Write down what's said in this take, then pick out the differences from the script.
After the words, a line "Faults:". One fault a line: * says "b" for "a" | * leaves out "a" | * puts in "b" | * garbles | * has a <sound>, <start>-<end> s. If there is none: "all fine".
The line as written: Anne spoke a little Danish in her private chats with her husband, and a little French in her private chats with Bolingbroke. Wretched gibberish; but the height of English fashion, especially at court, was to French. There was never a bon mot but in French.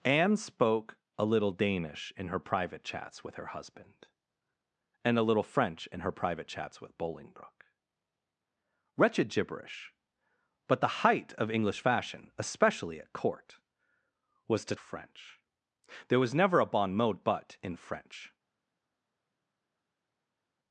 Anne spoke a little Danish in her private chats with her husband, and a little French in her private chats with Bolingbroke. Wretched gibberish; but the height of English fashion, especially at court, was to French. There was never a bon mot but in French.
Faults:
all fine